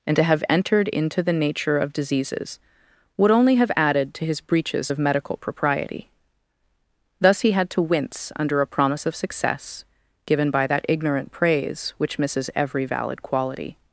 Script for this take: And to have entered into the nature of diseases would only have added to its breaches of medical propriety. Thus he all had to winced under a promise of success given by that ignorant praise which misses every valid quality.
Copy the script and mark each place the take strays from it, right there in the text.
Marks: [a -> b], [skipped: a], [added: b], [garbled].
And to have entered into the nature of diseases would only have added to [its -> his] breaches of medical propriety. Thus he [skipped: all] had to [winced -> wince] under a promise of success given by that ignorant praise which misses every valid quality.